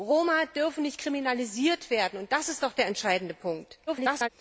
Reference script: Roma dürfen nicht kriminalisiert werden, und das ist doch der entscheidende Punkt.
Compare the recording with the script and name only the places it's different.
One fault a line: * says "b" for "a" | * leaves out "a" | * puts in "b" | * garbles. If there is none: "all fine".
* garbles